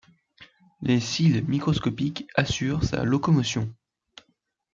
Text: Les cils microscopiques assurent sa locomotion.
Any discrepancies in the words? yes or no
no